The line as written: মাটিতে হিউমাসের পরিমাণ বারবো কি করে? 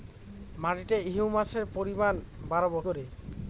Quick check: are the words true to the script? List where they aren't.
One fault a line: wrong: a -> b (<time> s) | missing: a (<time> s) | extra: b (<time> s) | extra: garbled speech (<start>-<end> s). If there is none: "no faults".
missing: কি (2.8 s)